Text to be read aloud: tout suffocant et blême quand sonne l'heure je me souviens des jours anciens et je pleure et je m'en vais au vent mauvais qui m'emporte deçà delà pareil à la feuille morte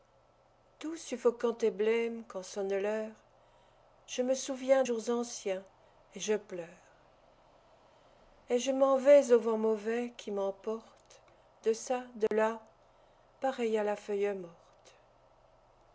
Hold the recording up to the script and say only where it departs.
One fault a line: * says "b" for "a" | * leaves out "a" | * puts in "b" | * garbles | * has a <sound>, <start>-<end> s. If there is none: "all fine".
* leaves out "des"
* has a dropout, 12.3-12.3 s